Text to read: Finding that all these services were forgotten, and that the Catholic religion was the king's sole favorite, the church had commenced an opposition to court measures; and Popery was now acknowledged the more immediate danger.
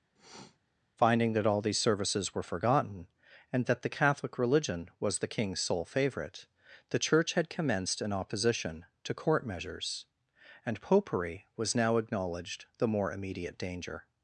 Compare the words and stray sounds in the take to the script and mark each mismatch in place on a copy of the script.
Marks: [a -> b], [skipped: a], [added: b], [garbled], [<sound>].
[sniff] Finding that all these services were forgotten, and that the Catholic religion was the king's sole favorite, the church had commenced an opposition to court measures; and Popery was now acknowledged the more immediate danger.